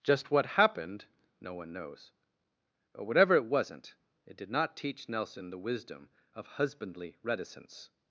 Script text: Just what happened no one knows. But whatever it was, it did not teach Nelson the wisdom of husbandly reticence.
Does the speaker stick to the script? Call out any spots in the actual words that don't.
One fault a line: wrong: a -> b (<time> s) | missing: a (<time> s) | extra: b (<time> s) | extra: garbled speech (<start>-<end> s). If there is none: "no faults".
wrong: was -> wasn't (3.5 s)